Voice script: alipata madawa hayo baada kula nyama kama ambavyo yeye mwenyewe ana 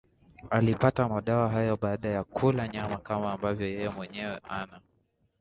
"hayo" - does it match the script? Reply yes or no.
yes